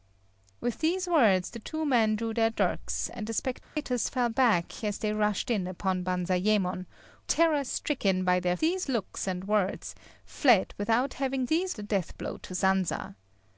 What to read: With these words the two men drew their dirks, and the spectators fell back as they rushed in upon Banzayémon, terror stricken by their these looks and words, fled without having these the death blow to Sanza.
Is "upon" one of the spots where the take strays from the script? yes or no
no